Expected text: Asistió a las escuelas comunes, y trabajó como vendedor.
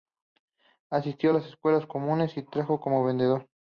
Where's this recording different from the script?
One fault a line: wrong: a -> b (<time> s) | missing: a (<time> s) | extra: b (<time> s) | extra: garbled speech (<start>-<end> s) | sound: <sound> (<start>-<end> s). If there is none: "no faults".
no faults